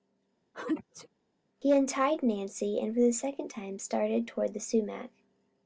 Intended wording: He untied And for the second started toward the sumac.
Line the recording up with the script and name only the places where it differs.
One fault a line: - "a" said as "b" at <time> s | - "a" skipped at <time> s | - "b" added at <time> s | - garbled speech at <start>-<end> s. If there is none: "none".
- "Nancy" added at 2.2 s
- "time" added at 3.5 s